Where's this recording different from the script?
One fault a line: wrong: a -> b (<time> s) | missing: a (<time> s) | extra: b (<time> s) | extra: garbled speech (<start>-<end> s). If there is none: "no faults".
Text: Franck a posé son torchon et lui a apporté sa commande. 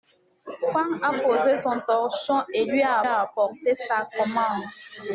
extra: a (3.0 s)